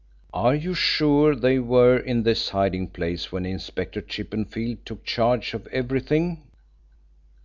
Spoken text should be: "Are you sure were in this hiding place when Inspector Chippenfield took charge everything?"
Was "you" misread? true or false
false